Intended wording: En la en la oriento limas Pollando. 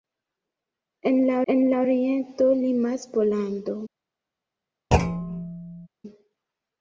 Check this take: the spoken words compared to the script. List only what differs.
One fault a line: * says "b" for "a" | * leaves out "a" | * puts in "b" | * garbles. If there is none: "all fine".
all fine